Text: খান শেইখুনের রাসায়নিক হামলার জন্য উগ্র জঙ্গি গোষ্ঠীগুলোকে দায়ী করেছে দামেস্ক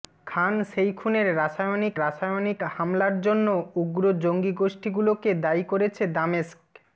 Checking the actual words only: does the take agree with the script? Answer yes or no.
no